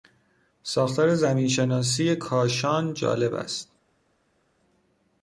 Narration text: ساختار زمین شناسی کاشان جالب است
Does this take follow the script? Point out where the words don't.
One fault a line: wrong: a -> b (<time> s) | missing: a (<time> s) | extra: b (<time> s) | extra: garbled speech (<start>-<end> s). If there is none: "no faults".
no faults